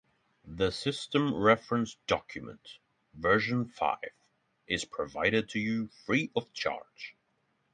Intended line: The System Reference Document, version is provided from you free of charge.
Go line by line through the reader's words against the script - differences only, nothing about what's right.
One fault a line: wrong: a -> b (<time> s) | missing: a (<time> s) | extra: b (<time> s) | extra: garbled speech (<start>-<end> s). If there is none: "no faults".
extra: five (3.6 s)
wrong: from -> to (5.5 s)